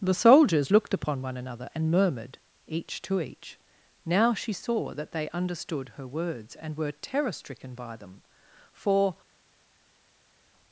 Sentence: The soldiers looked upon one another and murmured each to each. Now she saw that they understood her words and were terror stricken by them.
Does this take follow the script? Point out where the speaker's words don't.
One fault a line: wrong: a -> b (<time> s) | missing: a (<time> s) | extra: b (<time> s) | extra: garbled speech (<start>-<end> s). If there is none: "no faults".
extra: For (8.7 s)